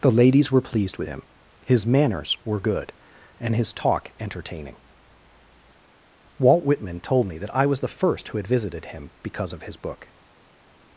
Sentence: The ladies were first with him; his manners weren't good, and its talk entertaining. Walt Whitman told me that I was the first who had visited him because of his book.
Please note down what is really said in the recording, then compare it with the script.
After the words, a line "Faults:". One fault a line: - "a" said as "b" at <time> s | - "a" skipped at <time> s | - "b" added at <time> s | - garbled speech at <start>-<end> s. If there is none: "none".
The ladies were pleased with him; his manners were good, and his talk entertaining. Walt Whitman told me that I was the first who had visited him because of his book.
Faults:
- "first" said as "pleased" at 0.6 s
- "weren't" said as "were" at 2.4 s
- "its" said as "his" at 3.5 s